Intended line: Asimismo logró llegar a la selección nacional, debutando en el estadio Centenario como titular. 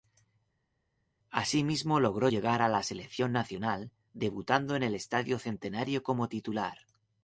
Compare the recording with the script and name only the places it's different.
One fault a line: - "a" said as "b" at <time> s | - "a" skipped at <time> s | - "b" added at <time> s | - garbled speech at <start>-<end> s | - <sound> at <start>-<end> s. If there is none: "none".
none